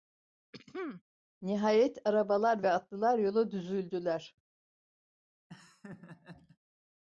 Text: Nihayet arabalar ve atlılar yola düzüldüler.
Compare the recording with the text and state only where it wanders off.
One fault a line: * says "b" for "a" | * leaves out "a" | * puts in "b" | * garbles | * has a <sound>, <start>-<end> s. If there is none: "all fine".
* has a throat clearing, 0.5-1.0 s
* has a laugh, 5.5-6.6 s